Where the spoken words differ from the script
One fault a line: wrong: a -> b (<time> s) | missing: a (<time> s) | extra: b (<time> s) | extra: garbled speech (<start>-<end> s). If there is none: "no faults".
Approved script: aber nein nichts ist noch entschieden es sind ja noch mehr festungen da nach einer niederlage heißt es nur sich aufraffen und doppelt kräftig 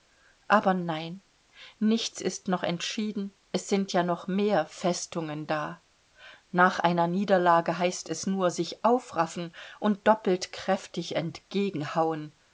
no faults